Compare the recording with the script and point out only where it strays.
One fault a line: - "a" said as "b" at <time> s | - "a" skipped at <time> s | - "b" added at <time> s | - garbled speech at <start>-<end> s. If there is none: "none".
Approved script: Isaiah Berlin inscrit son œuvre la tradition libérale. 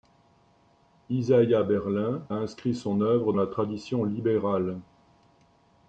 none